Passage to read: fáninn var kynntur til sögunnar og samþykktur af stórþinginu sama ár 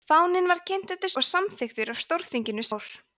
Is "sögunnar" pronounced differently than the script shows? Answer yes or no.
yes